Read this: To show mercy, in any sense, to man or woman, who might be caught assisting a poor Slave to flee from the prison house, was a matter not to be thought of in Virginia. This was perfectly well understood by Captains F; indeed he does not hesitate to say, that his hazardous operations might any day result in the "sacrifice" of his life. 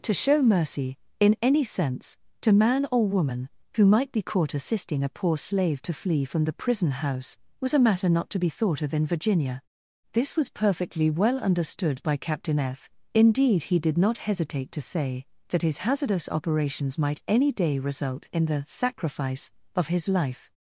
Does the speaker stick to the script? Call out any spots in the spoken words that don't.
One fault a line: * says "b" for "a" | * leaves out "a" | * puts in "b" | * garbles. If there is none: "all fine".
* says "Captain" for "Captains"
* says "did" for "does"